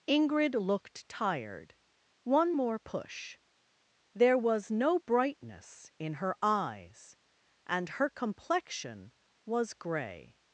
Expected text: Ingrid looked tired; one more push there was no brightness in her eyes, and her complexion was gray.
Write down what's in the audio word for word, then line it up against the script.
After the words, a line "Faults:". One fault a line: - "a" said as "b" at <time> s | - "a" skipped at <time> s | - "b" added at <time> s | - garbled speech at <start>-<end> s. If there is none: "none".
Ingrid looked tired; one more push there was no brightness in her eyes, and her complexion was gray.
Faults:
none